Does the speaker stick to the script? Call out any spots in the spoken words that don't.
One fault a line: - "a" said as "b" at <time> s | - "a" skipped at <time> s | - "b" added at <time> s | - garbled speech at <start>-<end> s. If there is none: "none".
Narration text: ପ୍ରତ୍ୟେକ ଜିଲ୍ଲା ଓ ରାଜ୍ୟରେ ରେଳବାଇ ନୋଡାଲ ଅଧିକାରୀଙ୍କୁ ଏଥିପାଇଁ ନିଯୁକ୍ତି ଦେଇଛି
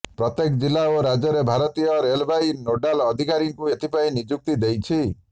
- "ଭାରତୀୟ" added at 1.5 s